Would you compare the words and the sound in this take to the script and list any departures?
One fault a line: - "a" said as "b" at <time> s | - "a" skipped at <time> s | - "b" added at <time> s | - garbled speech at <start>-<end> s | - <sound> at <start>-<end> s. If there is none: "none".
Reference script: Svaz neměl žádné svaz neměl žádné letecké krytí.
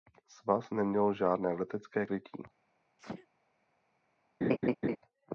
- "svaz neměl žádné" skipped at 1.5 s
- sneeze at 3.0-3.3 s
- laugh at 4.4-5.0 s